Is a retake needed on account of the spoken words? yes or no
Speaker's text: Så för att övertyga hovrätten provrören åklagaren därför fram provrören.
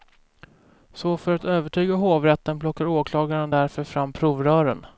yes